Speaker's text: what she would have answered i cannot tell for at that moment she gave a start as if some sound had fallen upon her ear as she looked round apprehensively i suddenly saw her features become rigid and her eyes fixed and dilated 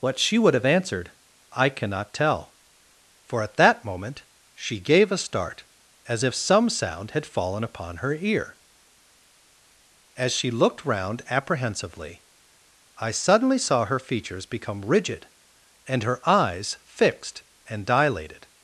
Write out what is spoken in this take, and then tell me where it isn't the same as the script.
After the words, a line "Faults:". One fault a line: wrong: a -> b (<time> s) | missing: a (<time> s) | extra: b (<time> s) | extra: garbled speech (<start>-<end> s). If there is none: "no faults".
what she would have answered i cannot tell for at that moment she gave a start as if some sound had fallen upon her ear as she looked round apprehensively i suddenly saw her features become rigid and her eyes fixed and dilated
Faults:
no faults